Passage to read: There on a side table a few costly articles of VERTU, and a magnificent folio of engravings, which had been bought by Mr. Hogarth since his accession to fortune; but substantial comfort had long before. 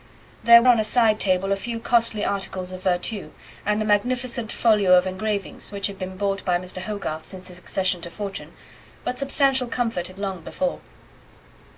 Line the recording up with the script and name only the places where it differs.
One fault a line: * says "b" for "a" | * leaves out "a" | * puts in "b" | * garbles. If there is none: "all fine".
all fine